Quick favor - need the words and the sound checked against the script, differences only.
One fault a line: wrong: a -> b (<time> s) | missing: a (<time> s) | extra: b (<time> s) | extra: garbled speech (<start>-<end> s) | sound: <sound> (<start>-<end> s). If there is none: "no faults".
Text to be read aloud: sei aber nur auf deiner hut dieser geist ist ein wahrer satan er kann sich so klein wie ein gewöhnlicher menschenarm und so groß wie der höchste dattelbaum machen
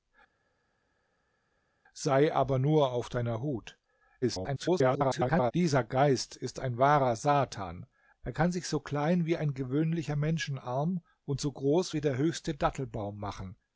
extra: garbled speech (4.2-5.5 s)